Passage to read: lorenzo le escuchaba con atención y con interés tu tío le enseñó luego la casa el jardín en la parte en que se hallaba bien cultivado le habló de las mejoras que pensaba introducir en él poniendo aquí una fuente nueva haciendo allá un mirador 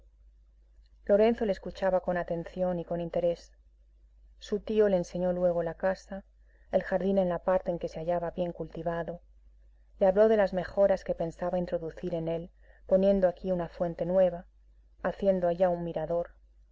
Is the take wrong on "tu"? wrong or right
wrong